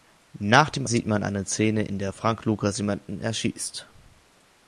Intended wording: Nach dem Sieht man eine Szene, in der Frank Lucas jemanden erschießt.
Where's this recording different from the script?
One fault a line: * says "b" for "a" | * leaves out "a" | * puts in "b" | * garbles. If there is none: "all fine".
all fine